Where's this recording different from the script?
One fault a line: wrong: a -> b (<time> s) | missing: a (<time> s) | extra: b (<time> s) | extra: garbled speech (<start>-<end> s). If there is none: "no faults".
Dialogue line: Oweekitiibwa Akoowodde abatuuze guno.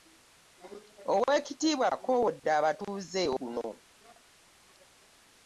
no faults